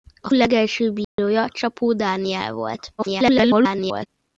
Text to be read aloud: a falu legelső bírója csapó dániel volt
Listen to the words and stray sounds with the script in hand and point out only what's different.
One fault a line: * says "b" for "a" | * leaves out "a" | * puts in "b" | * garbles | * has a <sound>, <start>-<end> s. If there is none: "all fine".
* leaves out "falu"
* has a dropout, 1.0-1.2 s
* garbles